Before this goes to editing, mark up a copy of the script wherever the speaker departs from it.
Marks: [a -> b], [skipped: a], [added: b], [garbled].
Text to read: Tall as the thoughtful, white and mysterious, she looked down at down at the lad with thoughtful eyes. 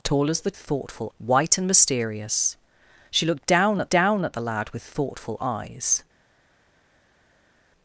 Tall as the thoughtful, white and mysterious, she looked down at down at the lad with thoughtful eyes.